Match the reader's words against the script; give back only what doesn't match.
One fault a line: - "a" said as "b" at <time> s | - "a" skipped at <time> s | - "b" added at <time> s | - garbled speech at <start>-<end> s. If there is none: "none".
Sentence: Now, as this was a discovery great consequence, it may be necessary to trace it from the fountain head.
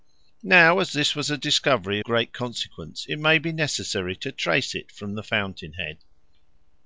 none